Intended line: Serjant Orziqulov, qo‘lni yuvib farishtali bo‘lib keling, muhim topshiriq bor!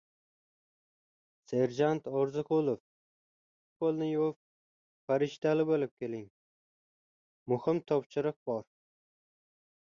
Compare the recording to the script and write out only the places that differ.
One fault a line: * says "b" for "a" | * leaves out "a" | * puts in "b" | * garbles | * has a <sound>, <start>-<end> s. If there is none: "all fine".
all fine